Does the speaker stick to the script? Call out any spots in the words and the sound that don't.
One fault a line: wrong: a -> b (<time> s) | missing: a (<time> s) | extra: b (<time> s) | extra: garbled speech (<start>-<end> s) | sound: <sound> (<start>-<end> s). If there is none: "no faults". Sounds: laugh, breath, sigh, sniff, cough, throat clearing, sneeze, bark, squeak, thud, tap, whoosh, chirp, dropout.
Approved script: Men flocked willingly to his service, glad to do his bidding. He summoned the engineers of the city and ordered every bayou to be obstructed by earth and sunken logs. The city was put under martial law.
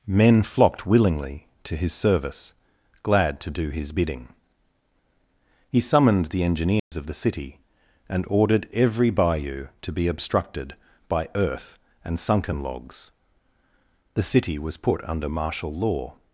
sound: dropout (6.8-6.9 s)